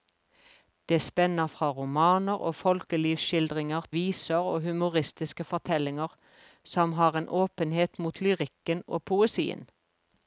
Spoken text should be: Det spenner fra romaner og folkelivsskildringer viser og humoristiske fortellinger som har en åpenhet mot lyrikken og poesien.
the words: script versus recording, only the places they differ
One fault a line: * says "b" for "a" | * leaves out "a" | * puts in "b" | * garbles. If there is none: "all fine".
all fine